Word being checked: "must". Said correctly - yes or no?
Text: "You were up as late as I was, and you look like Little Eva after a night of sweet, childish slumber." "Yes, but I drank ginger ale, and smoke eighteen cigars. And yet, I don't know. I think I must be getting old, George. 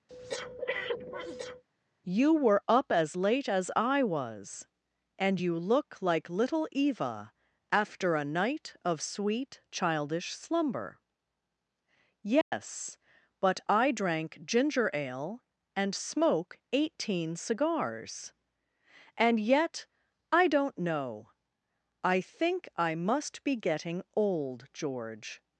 yes